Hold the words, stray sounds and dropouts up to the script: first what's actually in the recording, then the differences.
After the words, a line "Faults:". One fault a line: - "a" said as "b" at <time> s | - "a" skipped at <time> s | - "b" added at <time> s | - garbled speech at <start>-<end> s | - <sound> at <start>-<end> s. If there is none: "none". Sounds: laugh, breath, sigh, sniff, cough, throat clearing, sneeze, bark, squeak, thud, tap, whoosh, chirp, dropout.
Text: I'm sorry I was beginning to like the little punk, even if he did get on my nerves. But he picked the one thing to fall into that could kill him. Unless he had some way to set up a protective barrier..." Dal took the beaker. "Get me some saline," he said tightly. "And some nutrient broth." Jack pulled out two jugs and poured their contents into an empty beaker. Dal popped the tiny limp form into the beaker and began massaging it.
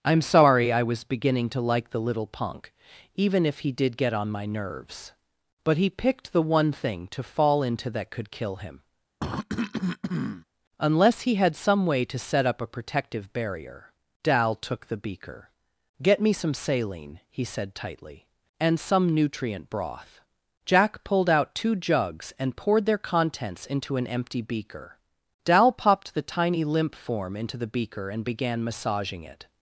I'm sorry I was beginning to like the little punk, even if he did get on my nerves. But he picked the one thing to fall into that could kill him. Unless he had some way to set up a protective barrier..." Dal took the beaker. "Get me some saline," he said tightly. "And some nutrient broth." Jack pulled out two jugs and poured their contents into an empty beaker. Dal popped the tiny limp form into the beaker and began massaging it.
Faults:
- cough at 9.2-10.5 s